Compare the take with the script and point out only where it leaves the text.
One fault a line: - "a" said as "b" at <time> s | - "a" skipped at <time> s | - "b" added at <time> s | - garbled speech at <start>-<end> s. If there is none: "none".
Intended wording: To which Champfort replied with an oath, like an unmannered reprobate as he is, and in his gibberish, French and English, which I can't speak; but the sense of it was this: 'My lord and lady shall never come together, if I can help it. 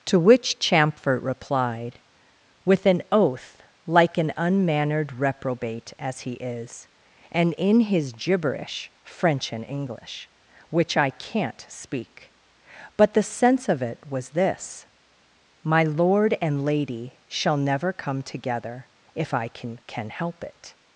- "can" added at 19.9 s